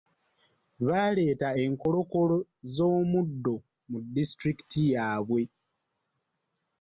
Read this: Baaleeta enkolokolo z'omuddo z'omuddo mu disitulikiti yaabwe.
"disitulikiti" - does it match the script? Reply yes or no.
yes